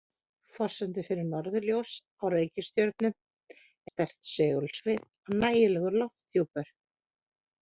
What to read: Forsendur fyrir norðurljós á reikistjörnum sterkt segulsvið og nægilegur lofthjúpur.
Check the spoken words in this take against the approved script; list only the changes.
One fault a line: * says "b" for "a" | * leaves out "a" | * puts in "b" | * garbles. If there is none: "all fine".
all fine